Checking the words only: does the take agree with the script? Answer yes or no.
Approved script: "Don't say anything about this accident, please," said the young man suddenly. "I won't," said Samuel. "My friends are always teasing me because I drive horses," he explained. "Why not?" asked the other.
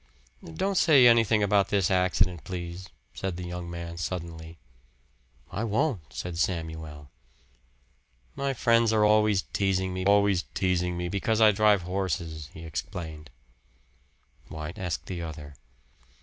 no